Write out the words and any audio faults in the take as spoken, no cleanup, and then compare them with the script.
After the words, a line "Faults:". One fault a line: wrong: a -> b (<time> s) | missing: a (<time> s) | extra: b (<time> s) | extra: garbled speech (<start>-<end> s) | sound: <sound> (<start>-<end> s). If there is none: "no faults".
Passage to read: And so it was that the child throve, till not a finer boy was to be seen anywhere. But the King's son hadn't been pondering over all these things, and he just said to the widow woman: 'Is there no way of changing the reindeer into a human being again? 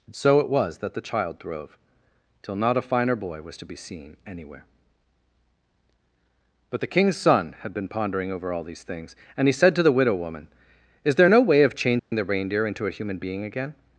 And so it was that the child throve, till not a finer boy was to be seen anywhere. But the King's son had been pondering over all these things, and he said to the widow woman: 'Is there no way of changing the reindeer into a human being again?
Faults:
wrong: hadn't -> had (7.6 s)
missing: just (9.5 s)
sound: dropout (12.0-12.1 s)